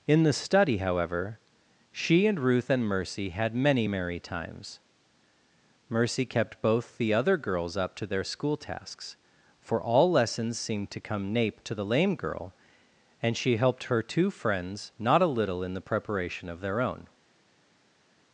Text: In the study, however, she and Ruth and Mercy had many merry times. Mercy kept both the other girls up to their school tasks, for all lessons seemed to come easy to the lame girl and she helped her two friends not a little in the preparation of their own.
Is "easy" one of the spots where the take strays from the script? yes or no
yes